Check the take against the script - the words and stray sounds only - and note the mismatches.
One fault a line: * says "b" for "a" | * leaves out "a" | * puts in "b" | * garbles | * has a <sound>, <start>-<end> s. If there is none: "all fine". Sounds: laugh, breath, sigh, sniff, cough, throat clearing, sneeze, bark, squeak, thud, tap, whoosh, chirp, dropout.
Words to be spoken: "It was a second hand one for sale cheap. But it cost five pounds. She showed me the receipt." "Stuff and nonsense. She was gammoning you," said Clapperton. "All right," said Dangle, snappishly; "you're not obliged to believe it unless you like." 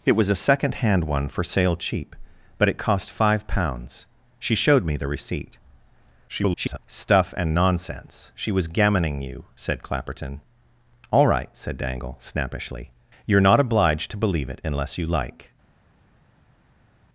* garbles